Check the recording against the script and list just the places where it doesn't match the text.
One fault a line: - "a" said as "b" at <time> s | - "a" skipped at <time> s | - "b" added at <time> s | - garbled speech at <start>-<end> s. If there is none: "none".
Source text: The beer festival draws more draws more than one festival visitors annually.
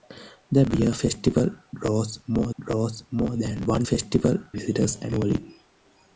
none